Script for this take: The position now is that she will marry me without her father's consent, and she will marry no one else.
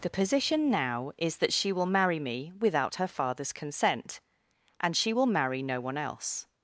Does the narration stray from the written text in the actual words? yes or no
no